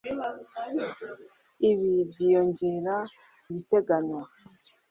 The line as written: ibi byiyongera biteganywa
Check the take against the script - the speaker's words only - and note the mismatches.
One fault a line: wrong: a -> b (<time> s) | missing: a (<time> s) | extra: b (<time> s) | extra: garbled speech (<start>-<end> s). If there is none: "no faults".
no faults